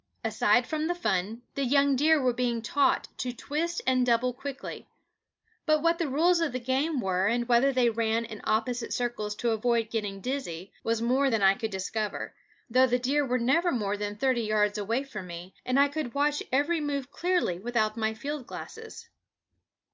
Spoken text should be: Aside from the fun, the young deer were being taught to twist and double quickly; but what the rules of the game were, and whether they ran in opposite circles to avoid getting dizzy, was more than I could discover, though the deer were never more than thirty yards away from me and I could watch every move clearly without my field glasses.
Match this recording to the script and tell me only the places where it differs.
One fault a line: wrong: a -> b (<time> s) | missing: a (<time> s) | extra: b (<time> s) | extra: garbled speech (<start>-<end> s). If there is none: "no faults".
no faults